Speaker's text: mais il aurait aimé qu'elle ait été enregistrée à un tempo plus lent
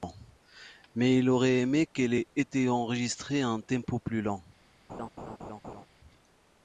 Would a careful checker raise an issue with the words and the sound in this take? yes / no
yes